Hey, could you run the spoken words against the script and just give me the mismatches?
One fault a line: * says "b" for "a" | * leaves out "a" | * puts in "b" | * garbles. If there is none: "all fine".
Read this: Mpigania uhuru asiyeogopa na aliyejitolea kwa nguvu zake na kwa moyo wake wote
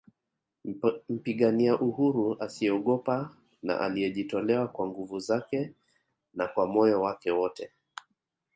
all fine